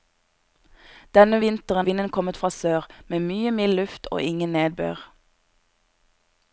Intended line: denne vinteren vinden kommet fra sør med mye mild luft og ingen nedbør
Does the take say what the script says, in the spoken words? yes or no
yes